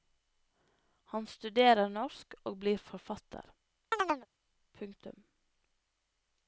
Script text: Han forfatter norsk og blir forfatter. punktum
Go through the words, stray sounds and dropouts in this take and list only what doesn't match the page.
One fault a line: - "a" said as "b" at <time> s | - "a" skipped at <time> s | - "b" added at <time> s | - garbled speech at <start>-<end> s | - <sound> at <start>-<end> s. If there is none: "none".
- "forfatter" said as "studerer" at 1.3 s
- chirp at 3.9-4.3 s